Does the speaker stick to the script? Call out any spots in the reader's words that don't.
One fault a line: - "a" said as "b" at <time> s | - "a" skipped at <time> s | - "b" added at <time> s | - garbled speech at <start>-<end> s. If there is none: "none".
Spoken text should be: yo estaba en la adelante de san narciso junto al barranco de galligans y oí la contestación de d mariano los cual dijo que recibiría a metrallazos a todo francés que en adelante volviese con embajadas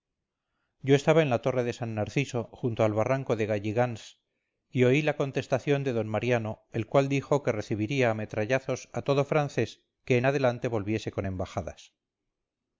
- "adelante" said as "torre" at 1.4 s
- "los" said as "el" at 6.7 s